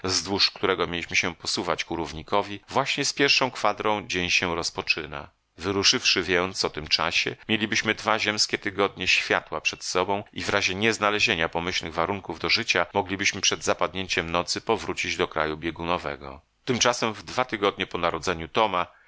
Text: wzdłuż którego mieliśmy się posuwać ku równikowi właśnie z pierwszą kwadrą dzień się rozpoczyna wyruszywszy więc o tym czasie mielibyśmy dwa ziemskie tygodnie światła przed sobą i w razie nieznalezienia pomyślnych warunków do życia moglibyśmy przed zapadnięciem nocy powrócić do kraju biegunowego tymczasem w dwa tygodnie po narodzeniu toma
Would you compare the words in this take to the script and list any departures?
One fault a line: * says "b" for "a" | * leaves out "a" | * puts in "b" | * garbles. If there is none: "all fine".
all fine